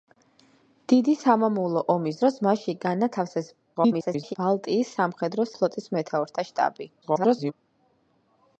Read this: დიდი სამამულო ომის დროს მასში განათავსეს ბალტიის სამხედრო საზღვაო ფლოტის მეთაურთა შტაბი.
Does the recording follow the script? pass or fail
fail